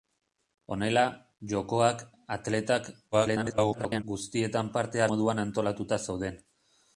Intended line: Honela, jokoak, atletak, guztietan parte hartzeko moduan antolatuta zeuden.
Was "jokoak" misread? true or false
false